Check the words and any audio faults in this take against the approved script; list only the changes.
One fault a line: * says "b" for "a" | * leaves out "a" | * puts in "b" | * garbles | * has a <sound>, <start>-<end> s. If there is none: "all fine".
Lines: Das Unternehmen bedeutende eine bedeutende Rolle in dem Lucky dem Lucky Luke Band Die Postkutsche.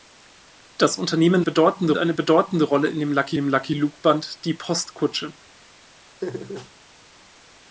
* has a laugh, 6.2-6.7 s